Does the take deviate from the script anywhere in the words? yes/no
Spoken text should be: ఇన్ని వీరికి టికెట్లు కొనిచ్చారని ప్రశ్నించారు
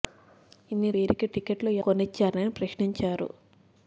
no